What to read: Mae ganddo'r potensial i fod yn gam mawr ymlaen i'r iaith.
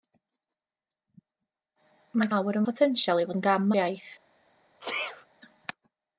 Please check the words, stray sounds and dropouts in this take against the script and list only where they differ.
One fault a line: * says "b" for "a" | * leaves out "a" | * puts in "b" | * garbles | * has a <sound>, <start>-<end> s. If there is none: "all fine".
* says "mawr" for "ganddo'r"
* leaves out "fod"
* leaves out "mawr ymlaen"
* has a sneeze, 4.8-5.3 s